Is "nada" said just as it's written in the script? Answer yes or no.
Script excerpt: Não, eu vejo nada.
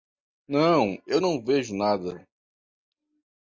yes